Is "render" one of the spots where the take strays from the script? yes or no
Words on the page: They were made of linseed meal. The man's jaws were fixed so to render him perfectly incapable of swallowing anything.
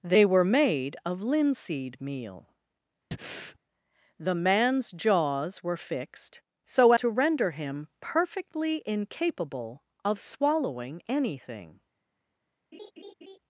no